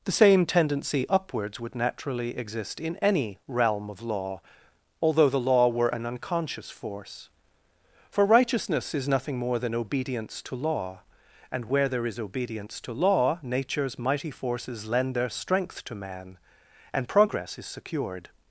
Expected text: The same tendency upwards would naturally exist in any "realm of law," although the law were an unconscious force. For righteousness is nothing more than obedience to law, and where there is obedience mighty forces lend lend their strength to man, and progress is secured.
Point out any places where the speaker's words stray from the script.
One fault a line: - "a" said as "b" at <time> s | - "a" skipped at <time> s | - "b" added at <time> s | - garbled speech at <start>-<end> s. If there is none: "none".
- "to law Nature's" added at 12.8 s
- "lend" skipped at 15.2 s